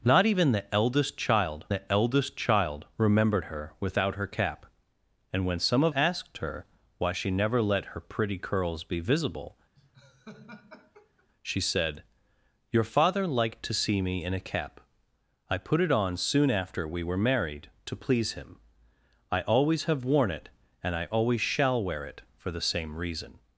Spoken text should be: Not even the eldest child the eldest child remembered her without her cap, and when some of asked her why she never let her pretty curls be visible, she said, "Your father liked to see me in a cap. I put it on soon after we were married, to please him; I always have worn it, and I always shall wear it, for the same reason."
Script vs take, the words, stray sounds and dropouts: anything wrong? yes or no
yes